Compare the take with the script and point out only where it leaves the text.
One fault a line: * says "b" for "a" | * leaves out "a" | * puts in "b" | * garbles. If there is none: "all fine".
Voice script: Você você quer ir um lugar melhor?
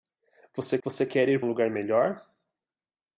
all fine